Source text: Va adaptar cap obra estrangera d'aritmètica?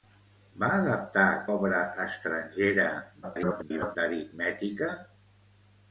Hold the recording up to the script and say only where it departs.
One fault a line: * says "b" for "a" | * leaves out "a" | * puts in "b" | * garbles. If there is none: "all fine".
* leaves out "cap"
* garbles